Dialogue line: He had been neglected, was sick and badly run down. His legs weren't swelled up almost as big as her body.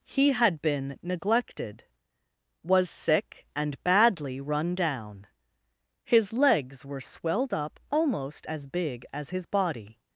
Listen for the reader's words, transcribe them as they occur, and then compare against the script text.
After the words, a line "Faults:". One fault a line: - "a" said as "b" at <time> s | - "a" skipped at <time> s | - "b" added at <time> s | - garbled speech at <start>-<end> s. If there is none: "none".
He had been neglected, was sick and badly run down. His legs were swelled up almost as big as his body.
Faults:
- "weren't" said as "were" at 6.8 s
- "her" said as "his" at 9.3 s